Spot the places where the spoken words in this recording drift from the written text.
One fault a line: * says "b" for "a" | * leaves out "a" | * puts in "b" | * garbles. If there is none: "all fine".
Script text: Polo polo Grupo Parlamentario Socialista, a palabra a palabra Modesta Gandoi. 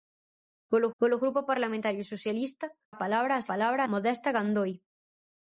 all fine